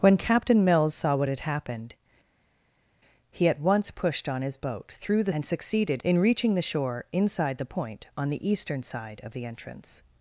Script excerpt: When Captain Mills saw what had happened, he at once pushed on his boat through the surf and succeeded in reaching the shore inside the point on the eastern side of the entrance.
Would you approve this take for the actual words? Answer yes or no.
no